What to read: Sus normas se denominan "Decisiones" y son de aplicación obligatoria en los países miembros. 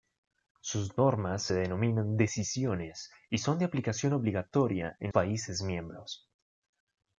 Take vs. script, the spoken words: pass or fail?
fail